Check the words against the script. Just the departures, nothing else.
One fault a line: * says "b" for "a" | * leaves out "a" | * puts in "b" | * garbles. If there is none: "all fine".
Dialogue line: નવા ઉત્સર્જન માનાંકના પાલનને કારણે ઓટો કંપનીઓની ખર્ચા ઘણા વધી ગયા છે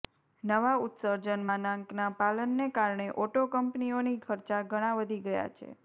all fine